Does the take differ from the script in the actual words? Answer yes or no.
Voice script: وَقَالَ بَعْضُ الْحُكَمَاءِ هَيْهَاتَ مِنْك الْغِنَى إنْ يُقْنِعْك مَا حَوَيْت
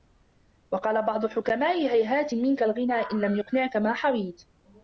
yes